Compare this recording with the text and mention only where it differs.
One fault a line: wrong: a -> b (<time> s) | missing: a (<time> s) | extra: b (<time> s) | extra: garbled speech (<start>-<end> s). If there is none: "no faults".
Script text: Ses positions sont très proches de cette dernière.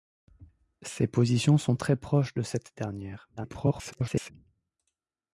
extra: garbled speech (3.4-4.3 s)